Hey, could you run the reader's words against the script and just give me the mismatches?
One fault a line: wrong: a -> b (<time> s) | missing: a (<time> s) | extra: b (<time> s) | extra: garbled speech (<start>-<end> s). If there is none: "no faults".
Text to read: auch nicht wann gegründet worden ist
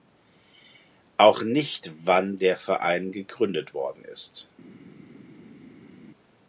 extra: der verein (2.4 s)